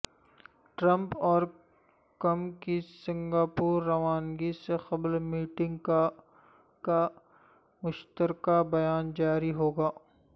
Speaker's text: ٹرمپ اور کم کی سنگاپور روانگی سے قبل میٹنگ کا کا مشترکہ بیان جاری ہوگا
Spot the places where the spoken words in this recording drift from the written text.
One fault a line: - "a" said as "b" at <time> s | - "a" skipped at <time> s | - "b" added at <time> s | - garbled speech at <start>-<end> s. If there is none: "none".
none